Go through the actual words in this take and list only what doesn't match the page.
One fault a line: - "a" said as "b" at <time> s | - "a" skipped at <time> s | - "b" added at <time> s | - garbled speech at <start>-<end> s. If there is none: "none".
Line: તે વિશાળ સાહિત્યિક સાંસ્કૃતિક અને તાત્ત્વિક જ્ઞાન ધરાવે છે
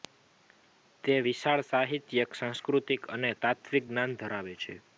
none